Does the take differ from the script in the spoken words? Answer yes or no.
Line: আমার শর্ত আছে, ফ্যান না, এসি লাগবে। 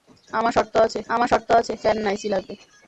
yes